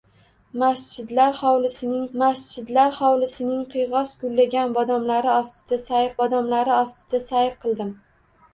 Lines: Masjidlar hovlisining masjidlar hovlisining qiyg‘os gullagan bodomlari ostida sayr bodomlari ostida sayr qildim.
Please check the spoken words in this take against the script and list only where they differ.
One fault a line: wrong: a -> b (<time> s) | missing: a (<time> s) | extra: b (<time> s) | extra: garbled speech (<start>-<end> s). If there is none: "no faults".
no faults